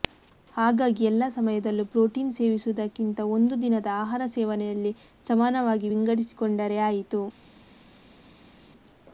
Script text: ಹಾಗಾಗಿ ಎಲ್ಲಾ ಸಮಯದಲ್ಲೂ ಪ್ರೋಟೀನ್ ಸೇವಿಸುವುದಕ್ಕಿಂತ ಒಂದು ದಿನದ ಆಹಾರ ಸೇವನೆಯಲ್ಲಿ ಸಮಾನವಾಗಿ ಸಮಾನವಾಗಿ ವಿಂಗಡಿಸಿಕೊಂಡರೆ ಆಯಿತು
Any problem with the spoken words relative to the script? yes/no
yes